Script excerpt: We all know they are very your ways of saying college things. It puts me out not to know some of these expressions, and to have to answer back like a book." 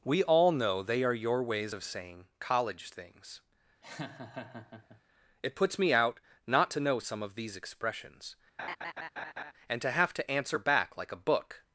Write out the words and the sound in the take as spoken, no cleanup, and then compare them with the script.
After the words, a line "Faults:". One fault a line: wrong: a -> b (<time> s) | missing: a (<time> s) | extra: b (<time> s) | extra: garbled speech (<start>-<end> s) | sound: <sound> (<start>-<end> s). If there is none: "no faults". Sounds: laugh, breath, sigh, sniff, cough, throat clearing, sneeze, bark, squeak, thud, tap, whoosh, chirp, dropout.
We all know they are your ways of saying college things. It puts me out not to know some of these expressions, and to have to answer back like a book."
Faults:
missing: very (1.1 s)
sound: laugh (3.8-5.0 s)
sound: laugh (8.6-9.5 s)